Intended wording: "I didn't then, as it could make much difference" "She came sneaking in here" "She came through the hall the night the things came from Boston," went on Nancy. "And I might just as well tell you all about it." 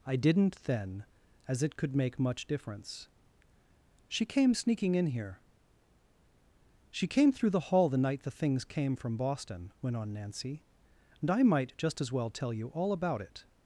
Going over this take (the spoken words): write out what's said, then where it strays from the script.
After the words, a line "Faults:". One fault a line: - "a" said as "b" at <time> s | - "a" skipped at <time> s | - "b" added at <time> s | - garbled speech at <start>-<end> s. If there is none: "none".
"I didn't then, as it could make much difference" "She came sneaking in here" "She came through the hall the night the things came from Boston," went on Nancy. "And I might just as well tell you all about it."
Faults:
none